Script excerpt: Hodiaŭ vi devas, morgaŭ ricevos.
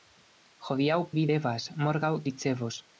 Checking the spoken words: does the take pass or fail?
pass